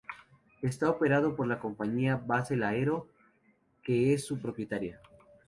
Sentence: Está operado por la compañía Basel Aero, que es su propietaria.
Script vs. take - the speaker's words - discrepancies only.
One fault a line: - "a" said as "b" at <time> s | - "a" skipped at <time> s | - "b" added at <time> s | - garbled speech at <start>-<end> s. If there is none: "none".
none